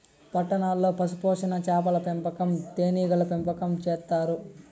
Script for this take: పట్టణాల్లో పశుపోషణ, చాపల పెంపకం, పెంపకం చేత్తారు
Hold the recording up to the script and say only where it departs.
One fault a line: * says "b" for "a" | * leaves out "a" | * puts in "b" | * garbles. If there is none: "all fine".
* puts in "తేనీగల"